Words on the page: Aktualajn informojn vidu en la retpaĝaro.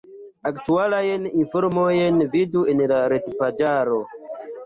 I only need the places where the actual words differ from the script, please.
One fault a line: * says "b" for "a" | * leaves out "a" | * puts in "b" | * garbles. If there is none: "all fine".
all fine